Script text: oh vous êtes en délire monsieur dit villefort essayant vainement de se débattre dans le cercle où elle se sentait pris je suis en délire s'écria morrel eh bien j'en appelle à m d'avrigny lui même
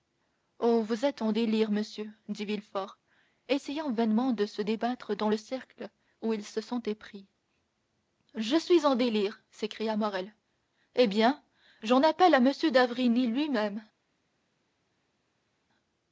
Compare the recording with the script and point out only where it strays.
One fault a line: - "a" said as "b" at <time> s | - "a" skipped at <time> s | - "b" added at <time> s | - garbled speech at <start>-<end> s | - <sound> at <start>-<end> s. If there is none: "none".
- "elle" said as "il" at 6.3 s